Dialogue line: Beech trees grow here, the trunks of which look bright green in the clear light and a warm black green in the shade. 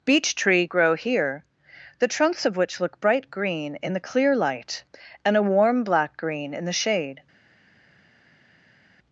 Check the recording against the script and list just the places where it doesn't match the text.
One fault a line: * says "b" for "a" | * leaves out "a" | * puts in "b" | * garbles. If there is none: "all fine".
* says "tree" for "trees"